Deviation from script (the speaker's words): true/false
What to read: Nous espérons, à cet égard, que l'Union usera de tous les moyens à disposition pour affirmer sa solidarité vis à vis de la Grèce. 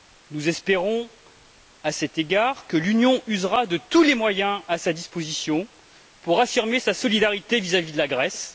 true